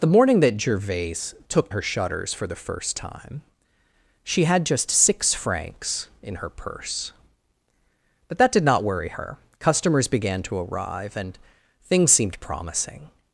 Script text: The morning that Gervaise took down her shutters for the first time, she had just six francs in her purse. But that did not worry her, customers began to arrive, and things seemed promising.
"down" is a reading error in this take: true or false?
true